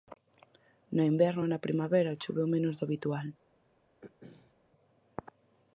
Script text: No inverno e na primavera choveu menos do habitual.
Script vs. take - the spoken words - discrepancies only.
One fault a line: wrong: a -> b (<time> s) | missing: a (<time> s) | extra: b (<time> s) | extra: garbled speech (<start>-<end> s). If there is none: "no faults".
no faults